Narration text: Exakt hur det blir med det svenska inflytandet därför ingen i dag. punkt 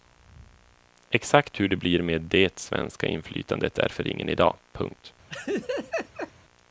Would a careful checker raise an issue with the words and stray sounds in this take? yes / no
yes